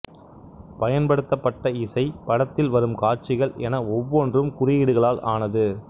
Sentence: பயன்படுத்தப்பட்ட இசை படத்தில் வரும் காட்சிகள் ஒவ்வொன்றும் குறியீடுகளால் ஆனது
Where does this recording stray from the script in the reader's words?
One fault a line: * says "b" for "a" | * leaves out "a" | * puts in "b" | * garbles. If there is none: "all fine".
* puts in "என"